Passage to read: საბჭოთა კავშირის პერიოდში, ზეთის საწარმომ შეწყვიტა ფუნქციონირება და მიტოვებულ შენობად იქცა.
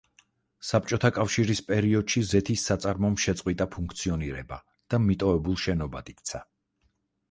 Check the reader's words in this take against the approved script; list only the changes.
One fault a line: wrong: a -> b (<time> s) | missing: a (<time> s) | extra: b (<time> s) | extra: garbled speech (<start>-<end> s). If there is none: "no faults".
no faults